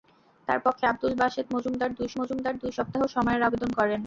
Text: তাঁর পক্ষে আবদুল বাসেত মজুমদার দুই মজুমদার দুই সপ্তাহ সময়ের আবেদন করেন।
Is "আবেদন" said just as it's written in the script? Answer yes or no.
yes